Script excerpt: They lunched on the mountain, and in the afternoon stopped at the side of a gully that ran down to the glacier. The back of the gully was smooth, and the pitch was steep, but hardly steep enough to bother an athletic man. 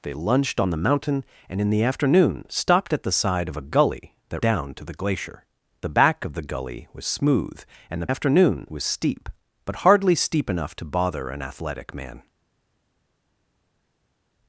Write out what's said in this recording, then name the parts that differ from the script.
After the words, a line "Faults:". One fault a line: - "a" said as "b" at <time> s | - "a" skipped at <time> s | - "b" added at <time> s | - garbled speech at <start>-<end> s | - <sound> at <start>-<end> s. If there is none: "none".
They lunched on the mountain, and in the afternoon stopped at the side of a gully that down to the glacier. The back of the gully was smooth, and the afternoon was steep, but hardly steep enough to bother an athletic man.
Faults:
- "ran" skipped at 4.4 s
- "pitch" said as "afternoon" at 8.1 s